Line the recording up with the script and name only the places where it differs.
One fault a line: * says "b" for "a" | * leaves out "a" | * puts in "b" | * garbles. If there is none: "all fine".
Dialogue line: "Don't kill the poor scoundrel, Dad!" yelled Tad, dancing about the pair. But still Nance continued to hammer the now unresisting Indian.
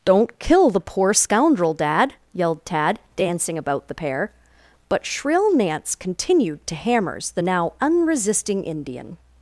* says "shrill" for "still"
* says "hammers" for "hammer"